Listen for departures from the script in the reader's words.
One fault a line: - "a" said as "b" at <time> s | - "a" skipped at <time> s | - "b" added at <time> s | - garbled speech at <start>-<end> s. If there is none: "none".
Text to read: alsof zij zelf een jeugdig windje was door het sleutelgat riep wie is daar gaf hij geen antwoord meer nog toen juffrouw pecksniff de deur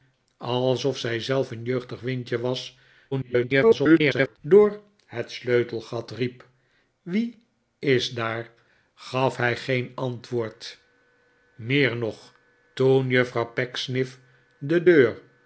- garbled speech at 3.1-4.4 s